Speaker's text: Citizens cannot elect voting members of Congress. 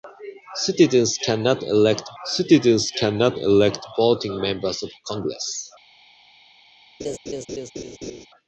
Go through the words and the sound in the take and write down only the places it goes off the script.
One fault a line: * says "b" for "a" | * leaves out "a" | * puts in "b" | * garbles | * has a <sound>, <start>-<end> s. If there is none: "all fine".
* puts in "citizens cannot elect"
* has a laugh, 7.0-8.3 s